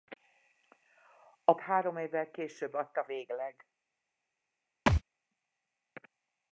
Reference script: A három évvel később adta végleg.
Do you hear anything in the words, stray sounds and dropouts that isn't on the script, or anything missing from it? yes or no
yes